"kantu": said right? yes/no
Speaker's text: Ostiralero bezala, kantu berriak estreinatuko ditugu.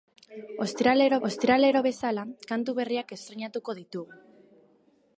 yes